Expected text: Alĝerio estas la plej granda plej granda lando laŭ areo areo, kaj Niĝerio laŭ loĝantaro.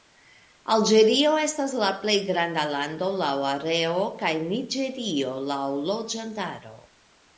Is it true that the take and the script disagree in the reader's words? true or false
true